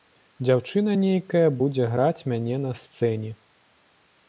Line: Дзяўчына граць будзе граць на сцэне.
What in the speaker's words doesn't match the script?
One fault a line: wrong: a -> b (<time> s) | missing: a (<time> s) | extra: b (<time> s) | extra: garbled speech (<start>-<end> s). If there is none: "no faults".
wrong: граць -> нейкая (1.0 s)
extra: мяне (2.3 s)